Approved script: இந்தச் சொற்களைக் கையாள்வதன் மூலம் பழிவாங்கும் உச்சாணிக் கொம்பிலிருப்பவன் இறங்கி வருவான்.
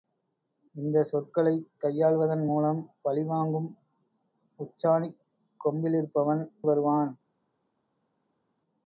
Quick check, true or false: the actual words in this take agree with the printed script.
false